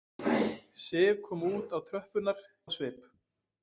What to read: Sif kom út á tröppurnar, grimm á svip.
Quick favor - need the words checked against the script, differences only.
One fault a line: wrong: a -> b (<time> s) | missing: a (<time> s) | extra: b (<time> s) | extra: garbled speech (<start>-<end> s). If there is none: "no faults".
missing: grimm (2.4 s)